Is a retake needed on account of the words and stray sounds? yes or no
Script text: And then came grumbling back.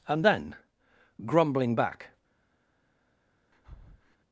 yes